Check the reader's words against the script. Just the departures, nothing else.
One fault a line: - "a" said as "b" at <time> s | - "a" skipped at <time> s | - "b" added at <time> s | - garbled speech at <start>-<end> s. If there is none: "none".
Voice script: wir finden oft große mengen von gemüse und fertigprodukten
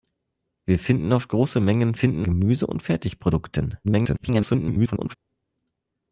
- "von" said as "finden" at 1.9 s
- garbled speech at 3.8-5.1 s